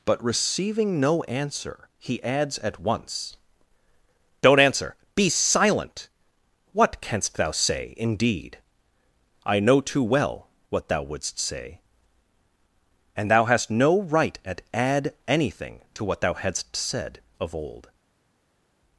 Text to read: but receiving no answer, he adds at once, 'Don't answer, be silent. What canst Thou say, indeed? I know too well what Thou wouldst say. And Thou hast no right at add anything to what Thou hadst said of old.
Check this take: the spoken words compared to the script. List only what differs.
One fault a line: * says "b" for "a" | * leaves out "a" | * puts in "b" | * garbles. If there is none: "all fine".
all fine